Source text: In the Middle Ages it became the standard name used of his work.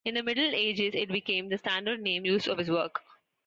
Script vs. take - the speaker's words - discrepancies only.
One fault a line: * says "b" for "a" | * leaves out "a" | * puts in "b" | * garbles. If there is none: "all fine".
all fine